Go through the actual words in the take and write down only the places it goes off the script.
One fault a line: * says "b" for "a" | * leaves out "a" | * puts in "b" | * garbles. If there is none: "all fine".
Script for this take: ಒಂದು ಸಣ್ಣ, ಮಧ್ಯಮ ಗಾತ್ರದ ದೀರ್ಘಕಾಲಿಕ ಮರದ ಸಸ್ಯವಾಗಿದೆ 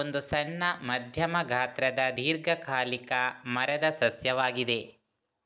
all fine